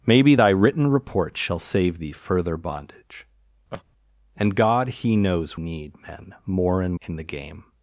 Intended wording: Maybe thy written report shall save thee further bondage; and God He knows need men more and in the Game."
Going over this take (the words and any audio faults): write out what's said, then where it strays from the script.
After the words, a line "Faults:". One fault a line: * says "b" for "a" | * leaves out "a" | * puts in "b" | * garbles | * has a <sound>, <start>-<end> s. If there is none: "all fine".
Maybe thy written report shall save thee further bondage; and God He knows need men more and in the Game."
Faults:
* has a laugh, 3.7-3.8 s